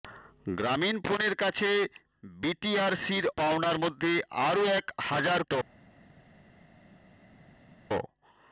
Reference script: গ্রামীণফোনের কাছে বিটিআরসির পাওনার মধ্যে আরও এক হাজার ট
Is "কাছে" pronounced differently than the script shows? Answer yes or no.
no